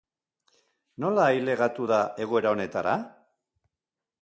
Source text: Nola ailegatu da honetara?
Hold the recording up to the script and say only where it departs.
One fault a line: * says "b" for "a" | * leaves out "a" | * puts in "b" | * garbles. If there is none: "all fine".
* puts in "egoera"